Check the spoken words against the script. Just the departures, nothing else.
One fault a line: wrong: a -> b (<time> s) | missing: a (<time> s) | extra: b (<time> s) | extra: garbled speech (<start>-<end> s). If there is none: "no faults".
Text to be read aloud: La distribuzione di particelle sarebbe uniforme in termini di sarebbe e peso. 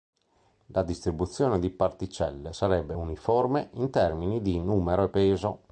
wrong: sarebbe -> numero (4.6 s)